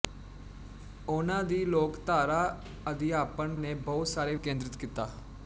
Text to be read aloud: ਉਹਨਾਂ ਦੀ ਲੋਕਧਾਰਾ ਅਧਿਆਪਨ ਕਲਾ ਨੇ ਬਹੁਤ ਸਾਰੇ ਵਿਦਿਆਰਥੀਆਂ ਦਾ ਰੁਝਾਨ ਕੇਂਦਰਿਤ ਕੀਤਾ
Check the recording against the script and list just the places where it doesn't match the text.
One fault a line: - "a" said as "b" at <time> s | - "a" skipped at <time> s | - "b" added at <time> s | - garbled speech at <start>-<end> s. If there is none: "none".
- "ਕਲਾ" skipped at 3.5 s
- "ਵਿਦਿਆਰਥੀਆਂ ਦਾ ਰੁਝਾਨ" skipped at 4.4 s